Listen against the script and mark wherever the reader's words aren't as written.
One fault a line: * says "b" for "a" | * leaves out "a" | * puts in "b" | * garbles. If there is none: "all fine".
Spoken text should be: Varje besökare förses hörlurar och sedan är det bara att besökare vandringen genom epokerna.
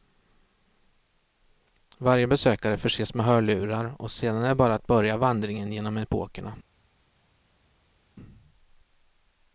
* puts in "med"
* says "börja" for "besökare"